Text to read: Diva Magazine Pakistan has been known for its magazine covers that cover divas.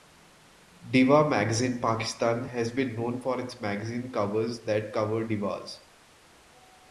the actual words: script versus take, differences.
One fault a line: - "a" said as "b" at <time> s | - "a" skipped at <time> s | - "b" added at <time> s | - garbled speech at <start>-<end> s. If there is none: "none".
none